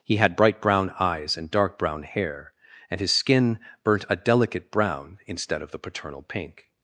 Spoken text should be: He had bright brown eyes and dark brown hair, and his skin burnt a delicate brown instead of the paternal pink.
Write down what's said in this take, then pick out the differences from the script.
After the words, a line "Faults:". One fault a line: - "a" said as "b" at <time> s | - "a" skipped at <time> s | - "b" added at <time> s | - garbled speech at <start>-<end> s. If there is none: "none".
He had bright brown eyes and dark brown hair, and his skin burnt a delicate brown instead of the paternal pink.
Faults:
none